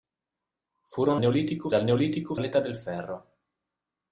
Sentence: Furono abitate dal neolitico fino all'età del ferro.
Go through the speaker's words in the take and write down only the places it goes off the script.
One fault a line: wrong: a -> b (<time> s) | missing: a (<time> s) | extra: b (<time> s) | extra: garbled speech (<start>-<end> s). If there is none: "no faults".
wrong: abitate -> neolitico (1.2 s)
missing: fino (2.3 s)